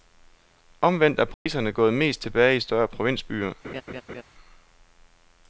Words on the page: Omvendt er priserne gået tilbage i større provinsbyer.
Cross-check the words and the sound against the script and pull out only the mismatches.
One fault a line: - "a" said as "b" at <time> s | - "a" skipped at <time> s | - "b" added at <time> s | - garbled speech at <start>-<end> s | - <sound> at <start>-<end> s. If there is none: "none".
- dropout at 1.3-1.5 s
- "mest" added at 1.9 s
- laugh at 3.6-4.2 s